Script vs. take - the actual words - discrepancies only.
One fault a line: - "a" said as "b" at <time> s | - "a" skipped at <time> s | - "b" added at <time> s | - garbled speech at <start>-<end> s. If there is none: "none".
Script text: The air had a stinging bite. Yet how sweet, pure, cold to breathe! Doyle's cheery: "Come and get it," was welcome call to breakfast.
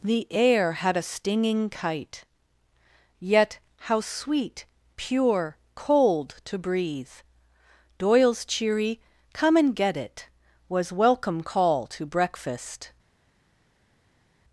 - "bite" said as "kite" at 1.7 s